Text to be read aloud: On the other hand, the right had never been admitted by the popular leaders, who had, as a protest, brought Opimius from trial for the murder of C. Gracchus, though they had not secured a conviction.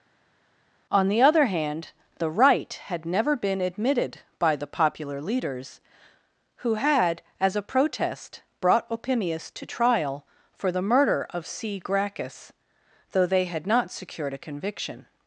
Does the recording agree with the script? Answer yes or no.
no